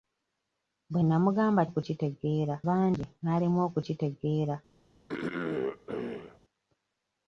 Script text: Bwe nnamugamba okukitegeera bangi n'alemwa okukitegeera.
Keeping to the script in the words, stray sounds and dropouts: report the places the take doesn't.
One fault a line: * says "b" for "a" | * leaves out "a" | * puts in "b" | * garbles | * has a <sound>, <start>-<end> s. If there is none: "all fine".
* has a throat clearing, 5.1-6.4 s